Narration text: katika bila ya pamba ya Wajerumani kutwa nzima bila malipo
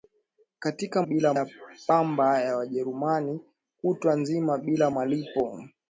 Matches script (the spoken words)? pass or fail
pass